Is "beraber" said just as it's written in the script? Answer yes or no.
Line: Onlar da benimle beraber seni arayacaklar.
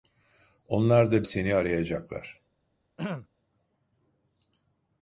no